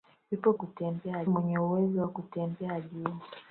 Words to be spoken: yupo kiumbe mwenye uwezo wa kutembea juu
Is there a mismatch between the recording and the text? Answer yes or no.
yes